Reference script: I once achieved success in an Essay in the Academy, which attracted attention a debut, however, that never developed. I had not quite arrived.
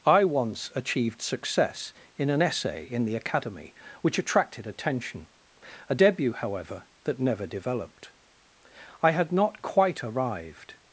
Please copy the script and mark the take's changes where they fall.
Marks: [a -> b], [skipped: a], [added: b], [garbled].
I once achieved success in an Essay in the Academy, which attracted attention a debut, however, that never developed. I had not quite arrived.